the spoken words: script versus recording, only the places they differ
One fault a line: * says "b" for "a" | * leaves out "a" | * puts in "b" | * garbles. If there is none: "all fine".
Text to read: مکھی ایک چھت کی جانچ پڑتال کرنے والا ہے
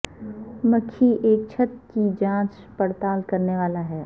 all fine